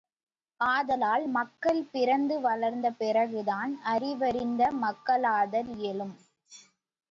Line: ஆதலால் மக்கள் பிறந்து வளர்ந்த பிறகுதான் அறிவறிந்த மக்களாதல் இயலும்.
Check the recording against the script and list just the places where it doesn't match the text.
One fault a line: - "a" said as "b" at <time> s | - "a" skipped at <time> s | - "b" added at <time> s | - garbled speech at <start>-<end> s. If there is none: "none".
none